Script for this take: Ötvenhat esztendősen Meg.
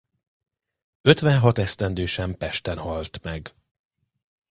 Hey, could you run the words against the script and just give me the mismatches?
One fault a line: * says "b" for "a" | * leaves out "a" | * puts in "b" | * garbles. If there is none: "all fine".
* puts in "Pesten halt"